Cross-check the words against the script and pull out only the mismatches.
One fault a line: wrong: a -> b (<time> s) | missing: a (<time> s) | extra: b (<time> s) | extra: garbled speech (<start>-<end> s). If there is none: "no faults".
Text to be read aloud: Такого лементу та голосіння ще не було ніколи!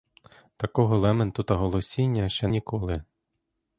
missing: не було (2.5 s)